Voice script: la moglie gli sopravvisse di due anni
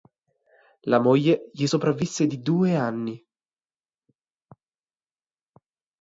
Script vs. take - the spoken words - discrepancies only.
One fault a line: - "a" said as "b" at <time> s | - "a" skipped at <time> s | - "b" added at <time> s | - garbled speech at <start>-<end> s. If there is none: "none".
none